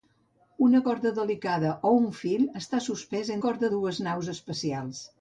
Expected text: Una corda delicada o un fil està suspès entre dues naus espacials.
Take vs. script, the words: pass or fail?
fail